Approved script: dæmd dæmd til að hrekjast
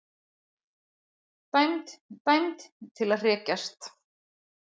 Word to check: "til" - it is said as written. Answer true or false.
true